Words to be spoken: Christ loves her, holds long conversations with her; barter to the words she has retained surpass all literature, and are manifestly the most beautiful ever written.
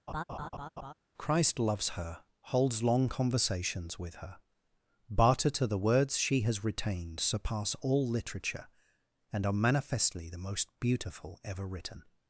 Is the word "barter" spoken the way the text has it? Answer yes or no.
yes